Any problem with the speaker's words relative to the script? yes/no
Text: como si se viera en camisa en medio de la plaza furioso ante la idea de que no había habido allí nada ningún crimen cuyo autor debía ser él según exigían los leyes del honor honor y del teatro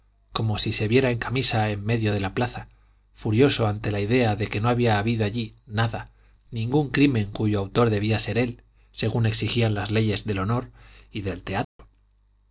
yes